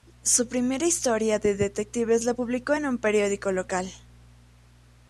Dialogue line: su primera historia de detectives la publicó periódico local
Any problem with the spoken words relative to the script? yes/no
yes